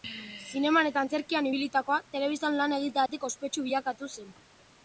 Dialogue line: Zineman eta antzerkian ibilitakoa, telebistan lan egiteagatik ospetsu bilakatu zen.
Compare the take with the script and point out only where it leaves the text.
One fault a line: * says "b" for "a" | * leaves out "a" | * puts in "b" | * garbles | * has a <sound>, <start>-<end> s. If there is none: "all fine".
* has a dropout, 3.1-3.1 s